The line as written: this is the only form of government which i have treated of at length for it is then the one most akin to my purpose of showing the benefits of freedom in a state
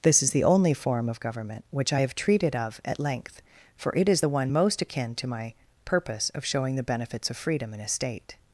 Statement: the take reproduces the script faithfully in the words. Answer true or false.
false